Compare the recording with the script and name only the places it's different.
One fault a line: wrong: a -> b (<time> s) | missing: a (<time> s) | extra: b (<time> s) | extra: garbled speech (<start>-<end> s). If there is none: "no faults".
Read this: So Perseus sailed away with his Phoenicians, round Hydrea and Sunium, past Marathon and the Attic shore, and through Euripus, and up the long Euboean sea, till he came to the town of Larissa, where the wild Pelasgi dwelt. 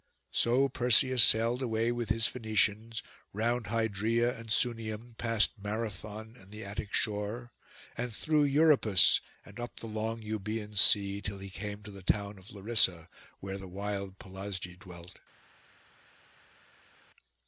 no faults